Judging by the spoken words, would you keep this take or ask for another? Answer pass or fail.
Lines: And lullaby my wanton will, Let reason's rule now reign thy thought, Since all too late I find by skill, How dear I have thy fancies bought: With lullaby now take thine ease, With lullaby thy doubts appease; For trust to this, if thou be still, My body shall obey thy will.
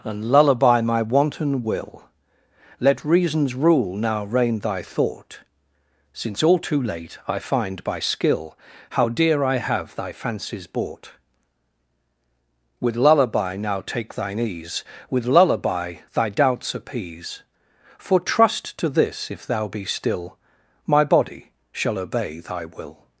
pass